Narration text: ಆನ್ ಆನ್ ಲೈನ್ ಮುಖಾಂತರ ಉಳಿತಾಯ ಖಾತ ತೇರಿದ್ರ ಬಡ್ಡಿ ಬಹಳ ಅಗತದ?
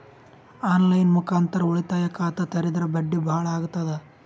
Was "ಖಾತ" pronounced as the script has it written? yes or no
yes